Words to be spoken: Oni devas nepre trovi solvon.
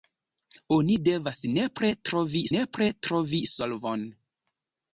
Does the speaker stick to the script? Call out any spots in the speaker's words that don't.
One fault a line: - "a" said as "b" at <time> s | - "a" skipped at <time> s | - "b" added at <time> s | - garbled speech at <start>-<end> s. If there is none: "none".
- "nepre trovi" added at 2.5 s